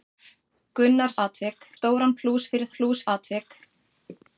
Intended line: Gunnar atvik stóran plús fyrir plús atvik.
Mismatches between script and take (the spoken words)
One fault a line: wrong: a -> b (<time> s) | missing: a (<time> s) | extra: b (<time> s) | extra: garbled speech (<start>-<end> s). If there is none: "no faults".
no faults